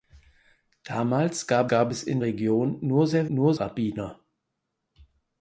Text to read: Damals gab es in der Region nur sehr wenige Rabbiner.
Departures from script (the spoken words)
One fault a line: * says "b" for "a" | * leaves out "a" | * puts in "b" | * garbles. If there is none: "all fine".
* puts in "gab"
* leaves out "der"
* says "nur" for "wenige"